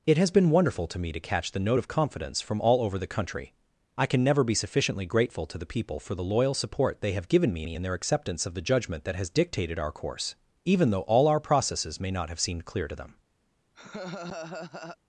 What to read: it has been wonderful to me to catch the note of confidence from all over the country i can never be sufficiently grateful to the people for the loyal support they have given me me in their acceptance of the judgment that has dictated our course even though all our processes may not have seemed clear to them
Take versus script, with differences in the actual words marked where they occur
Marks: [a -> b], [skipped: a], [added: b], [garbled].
it has been wonderful to me to catch the note of confidence from all over the country i can never be sufficiently grateful to the people for the loyal support they have given me me in their acceptance of the judgment that has dictated our course even though all our processes may not have seemed clear to them